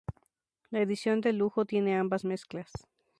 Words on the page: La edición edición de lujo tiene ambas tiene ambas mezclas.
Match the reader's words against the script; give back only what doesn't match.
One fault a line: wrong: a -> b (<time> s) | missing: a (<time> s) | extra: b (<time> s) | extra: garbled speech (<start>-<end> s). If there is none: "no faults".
missing: edición (1.2 s)
missing: tiene ambas (2.2 s)